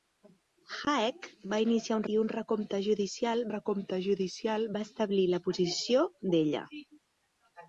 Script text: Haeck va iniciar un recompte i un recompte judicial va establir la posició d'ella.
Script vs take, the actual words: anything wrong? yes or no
yes